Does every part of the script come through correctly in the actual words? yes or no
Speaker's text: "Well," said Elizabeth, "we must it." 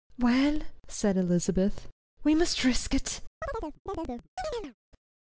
no